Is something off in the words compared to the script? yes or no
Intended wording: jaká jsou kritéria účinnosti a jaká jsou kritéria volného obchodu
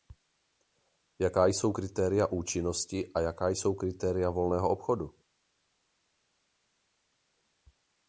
no